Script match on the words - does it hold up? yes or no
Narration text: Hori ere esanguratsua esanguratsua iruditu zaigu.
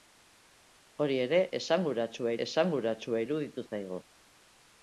yes